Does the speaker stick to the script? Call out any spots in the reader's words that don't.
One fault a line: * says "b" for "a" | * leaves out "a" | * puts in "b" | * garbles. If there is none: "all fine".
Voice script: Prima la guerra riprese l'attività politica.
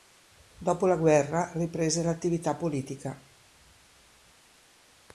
* says "Dopo" for "Prima"